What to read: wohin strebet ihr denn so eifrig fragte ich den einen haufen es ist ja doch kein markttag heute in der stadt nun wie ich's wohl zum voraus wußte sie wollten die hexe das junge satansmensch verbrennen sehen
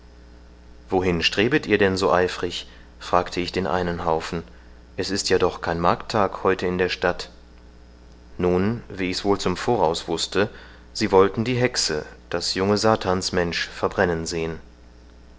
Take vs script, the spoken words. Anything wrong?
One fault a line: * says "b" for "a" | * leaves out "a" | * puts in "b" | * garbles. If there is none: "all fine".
all fine